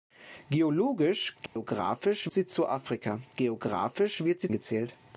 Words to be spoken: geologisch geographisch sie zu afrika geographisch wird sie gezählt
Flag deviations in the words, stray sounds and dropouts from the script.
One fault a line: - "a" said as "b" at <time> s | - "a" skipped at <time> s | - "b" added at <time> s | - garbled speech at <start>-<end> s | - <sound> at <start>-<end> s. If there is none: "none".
- dropout at 1.5-1.6 s